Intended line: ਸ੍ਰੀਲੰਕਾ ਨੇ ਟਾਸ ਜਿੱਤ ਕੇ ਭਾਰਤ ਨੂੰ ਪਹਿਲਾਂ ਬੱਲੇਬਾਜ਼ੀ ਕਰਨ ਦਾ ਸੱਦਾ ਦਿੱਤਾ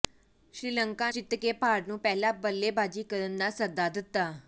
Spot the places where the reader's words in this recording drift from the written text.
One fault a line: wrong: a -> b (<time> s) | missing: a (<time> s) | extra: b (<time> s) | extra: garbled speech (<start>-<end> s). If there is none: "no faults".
missing: ਨੇ ਟਾਸ (1.1 s)